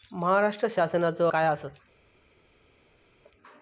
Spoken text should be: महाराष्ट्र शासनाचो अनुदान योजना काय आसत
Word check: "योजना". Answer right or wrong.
wrong